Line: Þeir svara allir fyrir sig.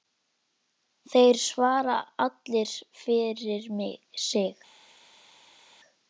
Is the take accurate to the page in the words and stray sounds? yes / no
yes